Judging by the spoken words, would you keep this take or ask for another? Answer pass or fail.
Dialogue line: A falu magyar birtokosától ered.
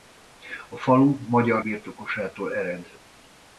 pass